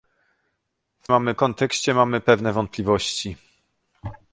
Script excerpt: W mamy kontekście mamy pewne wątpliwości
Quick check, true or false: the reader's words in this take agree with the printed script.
true